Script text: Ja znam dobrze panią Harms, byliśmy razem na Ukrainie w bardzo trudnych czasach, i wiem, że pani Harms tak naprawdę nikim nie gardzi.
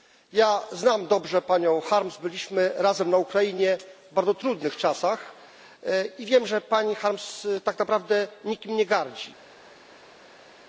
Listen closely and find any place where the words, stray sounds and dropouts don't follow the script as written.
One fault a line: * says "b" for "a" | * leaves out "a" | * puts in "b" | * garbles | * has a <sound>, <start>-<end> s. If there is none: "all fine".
all fine